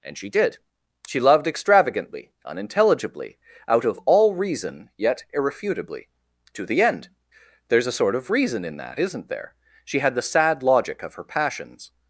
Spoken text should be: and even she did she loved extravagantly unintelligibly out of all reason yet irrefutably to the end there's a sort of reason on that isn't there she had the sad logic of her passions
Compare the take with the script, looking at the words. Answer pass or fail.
fail